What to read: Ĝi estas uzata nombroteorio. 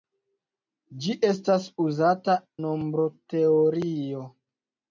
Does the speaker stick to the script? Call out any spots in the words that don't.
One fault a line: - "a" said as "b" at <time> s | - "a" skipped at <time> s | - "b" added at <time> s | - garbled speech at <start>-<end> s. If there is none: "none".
none